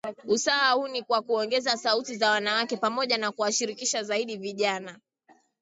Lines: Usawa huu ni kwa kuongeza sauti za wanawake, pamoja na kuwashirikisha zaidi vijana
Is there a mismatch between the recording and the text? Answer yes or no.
no